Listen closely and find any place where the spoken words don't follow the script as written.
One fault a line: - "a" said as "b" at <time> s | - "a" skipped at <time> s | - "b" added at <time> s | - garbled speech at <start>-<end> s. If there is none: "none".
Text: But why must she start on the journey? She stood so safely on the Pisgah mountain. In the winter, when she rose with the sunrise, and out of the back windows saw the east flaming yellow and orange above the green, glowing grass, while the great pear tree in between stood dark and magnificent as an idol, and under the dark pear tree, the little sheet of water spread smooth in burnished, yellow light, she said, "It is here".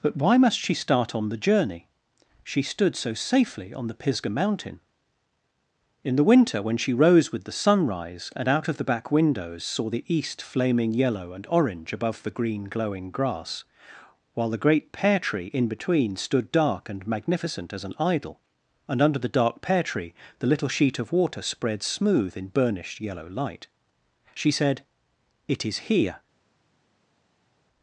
none